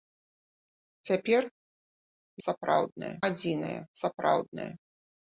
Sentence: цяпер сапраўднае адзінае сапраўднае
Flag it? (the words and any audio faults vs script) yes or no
no